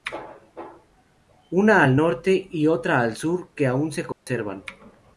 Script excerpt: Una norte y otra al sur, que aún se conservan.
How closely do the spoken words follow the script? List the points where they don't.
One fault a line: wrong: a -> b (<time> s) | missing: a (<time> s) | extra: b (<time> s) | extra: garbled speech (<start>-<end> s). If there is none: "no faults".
extra: al (1.8 s)